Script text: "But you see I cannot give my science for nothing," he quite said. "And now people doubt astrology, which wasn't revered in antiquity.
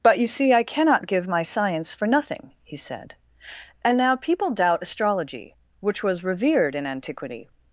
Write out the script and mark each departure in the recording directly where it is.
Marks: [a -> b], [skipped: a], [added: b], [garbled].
"But you see I cannot give my science for nothing," he [skipped: quite] said. "And now people doubt astrology, which [wasn't -> was] revered in antiquity.